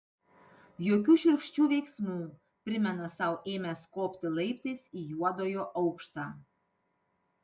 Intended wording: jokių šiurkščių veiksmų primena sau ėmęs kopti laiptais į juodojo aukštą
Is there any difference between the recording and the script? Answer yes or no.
no